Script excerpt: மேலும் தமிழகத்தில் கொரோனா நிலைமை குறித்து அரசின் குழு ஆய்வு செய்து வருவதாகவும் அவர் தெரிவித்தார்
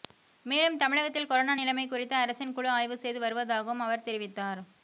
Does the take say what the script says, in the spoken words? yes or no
yes